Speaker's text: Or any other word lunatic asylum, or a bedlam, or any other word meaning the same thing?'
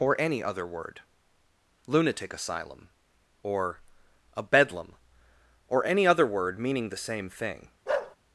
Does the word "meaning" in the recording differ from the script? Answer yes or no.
no